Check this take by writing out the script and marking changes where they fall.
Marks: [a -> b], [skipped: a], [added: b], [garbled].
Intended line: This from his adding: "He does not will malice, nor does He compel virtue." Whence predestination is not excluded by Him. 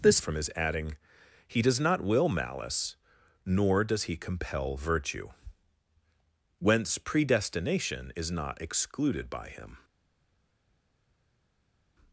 This from his adding: "He does not will malice, nor does He compel virtue." Whence predestination is not excluded by Him.